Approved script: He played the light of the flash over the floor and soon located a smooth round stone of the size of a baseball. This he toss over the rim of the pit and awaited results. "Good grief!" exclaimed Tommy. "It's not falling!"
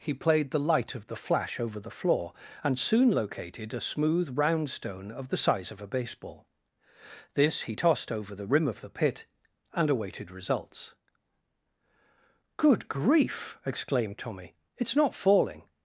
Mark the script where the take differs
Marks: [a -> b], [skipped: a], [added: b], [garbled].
He played the light of the flash over the floor and soon located a smooth round stone of the size of a baseball. This he [toss -> tossed] over the rim of the pit and awaited results. "Good grief!" exclaimed Tommy. "It's not falling!"